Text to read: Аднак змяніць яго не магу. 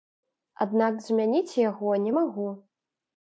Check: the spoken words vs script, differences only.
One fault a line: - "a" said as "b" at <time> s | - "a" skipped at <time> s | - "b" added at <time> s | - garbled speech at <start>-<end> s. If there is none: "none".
none